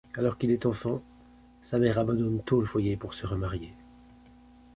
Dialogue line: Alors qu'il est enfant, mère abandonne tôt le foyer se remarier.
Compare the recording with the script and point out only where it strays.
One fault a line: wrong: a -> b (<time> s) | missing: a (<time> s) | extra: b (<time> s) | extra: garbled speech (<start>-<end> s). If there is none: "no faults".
extra: sa (1.6 s)
extra: pour (2.9 s)